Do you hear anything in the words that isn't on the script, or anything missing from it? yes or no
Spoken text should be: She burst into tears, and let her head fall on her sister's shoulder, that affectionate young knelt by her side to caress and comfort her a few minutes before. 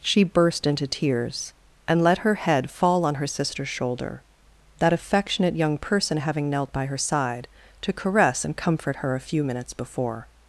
yes